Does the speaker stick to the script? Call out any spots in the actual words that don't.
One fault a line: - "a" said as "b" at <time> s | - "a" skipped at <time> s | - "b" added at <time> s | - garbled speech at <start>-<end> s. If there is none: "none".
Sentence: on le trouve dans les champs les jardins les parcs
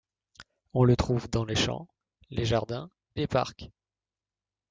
none